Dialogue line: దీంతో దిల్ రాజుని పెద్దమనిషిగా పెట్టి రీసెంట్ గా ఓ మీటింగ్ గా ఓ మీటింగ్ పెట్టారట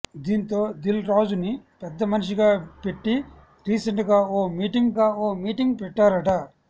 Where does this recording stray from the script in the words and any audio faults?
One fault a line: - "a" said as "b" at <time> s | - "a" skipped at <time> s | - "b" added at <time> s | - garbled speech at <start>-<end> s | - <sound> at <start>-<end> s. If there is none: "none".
none